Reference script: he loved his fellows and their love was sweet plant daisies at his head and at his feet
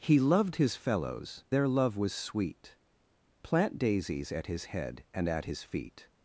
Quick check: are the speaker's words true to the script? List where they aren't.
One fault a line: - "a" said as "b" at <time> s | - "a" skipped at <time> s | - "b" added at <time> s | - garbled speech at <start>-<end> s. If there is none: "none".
- "and" skipped at 1.4 s